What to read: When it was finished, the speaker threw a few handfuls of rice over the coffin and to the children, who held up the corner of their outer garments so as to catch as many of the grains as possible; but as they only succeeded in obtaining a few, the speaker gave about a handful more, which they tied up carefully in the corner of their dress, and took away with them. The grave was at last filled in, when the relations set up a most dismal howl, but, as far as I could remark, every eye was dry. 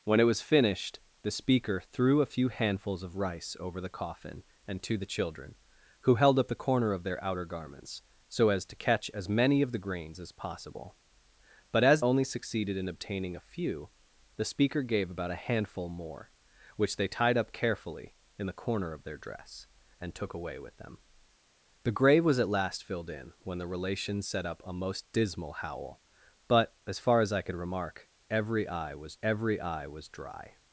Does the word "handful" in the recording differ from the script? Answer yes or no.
no